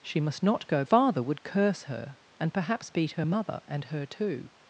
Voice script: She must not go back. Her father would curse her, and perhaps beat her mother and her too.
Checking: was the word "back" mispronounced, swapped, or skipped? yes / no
yes